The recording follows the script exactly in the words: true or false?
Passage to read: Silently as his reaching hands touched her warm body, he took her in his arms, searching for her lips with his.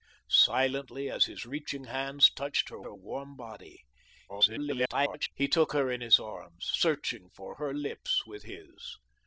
false